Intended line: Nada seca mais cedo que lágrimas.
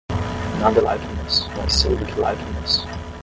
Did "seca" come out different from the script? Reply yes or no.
yes